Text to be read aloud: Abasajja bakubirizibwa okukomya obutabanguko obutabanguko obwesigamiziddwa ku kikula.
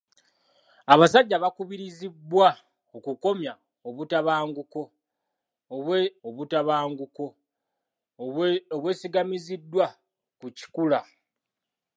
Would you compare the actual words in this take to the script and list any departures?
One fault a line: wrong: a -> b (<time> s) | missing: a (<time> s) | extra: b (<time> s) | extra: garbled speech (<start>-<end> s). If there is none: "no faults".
no faults